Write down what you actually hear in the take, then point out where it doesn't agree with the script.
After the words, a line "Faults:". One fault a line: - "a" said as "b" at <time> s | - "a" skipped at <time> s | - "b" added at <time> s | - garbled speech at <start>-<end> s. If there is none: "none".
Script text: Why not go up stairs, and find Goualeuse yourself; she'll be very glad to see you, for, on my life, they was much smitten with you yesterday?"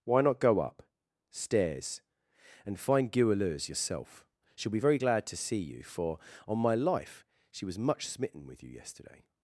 Why not go up stairs, and find Goualeuse yourself; she'll be very glad to see you, for, on my life, she was much smitten with you yesterday?"
Faults:
- "they" said as "she" at 7.5 s